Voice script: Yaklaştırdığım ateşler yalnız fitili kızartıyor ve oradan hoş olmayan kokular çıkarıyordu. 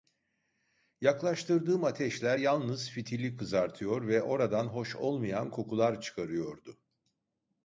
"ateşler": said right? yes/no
yes